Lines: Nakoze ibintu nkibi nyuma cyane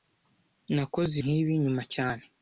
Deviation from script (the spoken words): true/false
true